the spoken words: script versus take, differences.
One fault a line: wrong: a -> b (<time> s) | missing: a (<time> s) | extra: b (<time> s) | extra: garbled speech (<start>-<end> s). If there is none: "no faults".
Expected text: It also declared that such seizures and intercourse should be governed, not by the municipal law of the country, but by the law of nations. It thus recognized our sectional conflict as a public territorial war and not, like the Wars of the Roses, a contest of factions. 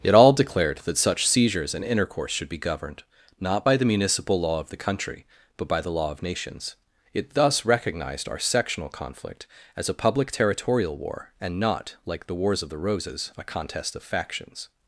wrong: also -> all (0.1 s)